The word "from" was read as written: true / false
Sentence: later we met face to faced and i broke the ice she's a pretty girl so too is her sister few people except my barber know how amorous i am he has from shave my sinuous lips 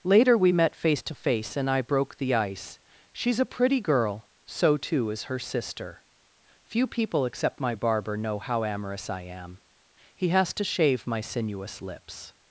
false